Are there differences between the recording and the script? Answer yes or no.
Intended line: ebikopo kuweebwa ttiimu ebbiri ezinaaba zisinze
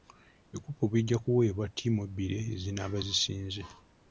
yes